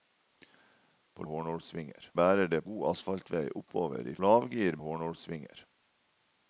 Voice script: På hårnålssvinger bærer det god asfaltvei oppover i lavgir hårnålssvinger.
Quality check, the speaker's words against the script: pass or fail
pass